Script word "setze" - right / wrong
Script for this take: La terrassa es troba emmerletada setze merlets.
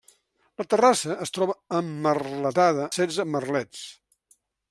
right